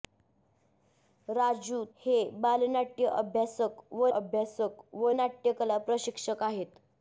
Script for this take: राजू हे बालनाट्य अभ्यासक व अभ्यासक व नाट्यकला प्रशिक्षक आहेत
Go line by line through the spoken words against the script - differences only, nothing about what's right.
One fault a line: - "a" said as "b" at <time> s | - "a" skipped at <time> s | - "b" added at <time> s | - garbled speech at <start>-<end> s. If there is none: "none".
none